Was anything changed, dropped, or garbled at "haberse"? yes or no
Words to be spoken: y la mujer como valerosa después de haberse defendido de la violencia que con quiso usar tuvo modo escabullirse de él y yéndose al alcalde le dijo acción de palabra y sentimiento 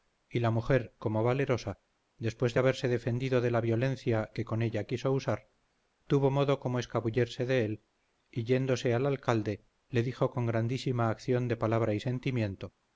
no